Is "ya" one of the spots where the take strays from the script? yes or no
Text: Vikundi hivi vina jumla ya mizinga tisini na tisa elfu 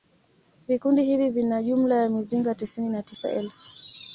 no